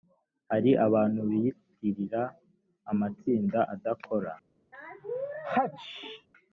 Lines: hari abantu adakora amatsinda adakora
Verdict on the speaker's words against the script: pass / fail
fail